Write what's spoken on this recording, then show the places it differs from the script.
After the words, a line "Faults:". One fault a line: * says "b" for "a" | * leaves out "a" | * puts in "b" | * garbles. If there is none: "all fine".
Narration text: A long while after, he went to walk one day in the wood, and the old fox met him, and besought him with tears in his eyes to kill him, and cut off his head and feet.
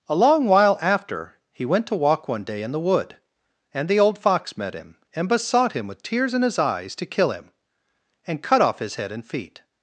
A long while after, he went to walk one day in the wood, and the old fox met him, and besought him with tears in his eyes to kill him, and cut off his head and feet.
Faults:
all fine